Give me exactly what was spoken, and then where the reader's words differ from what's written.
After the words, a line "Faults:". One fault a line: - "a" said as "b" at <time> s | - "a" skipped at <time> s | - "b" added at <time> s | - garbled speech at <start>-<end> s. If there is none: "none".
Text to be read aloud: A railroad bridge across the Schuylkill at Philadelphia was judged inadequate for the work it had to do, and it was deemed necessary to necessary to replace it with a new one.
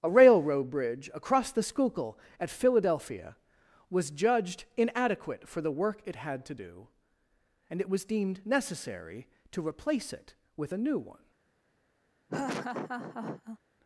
A railroad bridge across the Schuylkill at Philadelphia was judged inadequate for the work it had to do, and it was deemed necessary to replace it with a new one.
Faults:
- "necessary to" skipped at 9.7 s